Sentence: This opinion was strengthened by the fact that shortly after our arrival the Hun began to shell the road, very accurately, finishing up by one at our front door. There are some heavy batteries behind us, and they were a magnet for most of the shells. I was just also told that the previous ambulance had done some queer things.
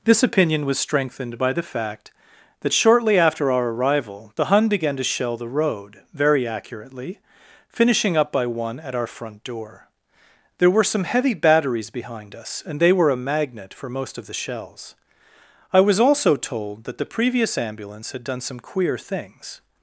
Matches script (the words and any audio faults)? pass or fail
fail